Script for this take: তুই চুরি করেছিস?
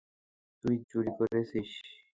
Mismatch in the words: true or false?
false